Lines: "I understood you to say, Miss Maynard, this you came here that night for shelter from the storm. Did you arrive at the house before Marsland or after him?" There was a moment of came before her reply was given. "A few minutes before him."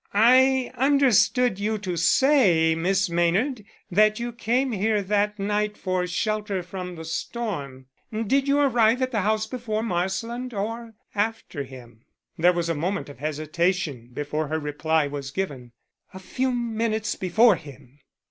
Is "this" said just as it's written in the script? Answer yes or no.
no